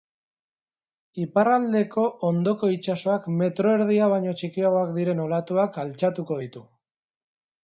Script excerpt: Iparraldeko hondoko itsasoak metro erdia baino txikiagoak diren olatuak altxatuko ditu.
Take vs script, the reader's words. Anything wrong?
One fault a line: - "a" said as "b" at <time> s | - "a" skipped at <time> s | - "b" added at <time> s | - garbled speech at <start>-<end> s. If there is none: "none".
none